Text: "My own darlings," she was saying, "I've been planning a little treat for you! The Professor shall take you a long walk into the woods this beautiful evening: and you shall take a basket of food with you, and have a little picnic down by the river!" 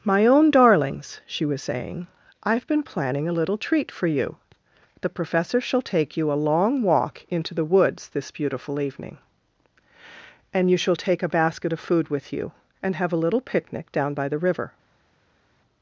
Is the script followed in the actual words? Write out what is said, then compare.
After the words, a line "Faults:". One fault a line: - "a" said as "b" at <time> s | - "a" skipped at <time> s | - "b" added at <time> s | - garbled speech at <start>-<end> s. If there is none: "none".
"My own darlings," she was saying, "I've been planning a little treat for you! The Professor shall take you a long walk into the woods this beautiful evening: and you shall take a basket of food with you, and have a little picnic down by the river!"
Faults:
none